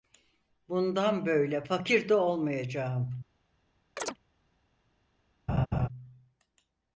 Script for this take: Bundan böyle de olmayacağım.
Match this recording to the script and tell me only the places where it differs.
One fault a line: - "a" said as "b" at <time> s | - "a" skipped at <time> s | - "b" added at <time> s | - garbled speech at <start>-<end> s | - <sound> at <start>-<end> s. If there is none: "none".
- "fakir" added at 1.6 s
- chirp at 4.0-4.2 s
- laugh at 5.5-5.9 s